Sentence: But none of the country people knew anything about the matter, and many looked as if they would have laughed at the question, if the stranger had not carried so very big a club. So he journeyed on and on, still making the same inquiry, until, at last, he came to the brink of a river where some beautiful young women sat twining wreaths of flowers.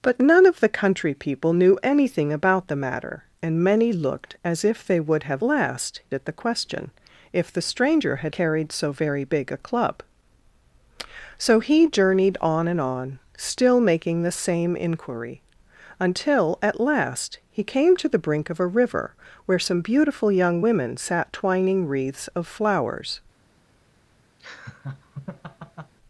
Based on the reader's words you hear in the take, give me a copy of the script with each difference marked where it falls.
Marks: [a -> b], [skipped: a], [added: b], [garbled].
But none of the country people knew anything about the matter, and many looked as if they would have [laughed -> last] at the question, if the stranger had [skipped: not] carried so very big a club. So he journeyed on and on, still making the same inquiry, until, at last, he came to the brink of a river where some beautiful young women sat twining wreaths of flowers.